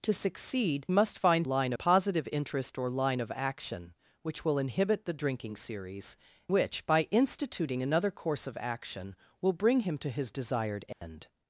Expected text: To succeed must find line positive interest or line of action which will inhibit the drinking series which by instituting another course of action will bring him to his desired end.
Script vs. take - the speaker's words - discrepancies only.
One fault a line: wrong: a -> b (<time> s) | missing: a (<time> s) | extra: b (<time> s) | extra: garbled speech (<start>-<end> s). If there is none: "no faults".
no faults